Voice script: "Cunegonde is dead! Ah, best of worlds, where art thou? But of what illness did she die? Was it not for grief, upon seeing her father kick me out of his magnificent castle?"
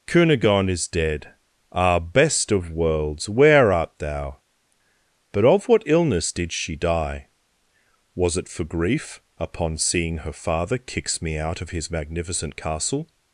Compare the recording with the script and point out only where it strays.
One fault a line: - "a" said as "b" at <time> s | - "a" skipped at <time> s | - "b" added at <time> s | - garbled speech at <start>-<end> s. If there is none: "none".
- "not" skipped at 8.5 s
- "kick" said as "kicks" at 10.8 s